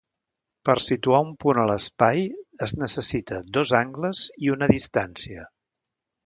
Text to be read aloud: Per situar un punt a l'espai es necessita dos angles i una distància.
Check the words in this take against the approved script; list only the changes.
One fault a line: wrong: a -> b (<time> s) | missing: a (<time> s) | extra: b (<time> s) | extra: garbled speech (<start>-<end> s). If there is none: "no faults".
no faults